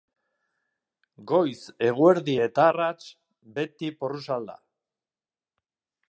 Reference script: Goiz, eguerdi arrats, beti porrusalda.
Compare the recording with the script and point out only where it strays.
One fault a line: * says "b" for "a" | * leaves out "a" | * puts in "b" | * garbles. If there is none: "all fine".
* puts in "eta"